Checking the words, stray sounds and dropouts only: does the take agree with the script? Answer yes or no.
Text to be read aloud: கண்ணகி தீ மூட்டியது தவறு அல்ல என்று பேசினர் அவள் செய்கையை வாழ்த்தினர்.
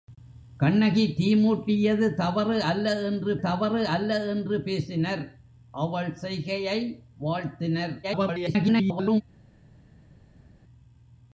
no